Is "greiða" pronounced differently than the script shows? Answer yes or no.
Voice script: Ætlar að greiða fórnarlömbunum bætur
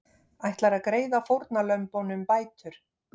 no